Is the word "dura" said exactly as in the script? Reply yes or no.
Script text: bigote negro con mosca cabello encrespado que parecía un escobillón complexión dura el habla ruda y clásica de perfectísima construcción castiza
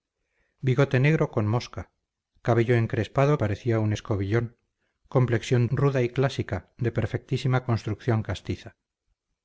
no